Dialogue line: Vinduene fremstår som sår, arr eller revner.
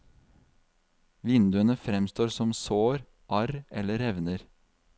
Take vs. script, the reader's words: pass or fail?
pass